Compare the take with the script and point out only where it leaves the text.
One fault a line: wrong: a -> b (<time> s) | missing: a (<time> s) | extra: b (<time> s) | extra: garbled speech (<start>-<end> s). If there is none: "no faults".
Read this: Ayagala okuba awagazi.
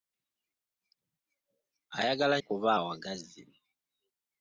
no faults